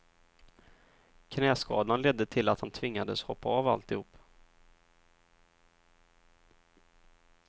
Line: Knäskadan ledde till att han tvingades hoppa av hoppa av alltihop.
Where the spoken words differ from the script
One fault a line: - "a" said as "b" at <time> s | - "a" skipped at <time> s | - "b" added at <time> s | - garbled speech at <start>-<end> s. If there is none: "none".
- "hoppa av" skipped at 3.7 s